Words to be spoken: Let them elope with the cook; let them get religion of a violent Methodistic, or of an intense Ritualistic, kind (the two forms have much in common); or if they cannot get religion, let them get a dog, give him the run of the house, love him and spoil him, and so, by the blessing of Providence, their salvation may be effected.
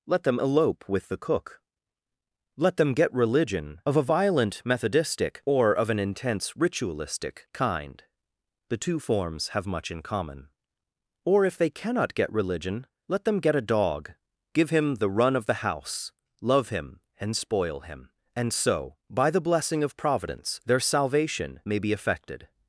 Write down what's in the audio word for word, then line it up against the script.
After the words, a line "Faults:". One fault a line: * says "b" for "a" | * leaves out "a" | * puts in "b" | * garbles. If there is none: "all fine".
Let them elope with the cook; let them get religion of a violent Methodistic, or of an intense Ritualistic, kind (the two forms have much in common); or if they cannot get religion, let them get a dog, give him the run of the house, love him and spoil him, and so, by the blessing of Providence, their salvation may be effected.
Faults:
all fine